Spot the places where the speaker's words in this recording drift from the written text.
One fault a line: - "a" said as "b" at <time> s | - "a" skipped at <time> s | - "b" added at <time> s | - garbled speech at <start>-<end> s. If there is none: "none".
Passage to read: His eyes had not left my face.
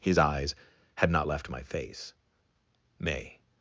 - "May" added at 3.0 s